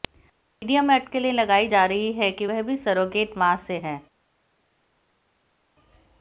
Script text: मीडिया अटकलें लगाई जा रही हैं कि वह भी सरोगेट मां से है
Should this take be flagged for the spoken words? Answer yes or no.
yes